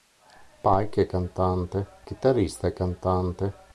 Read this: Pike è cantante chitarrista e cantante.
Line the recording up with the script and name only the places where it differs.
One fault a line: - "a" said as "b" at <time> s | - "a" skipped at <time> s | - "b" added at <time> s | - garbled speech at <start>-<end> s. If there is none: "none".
none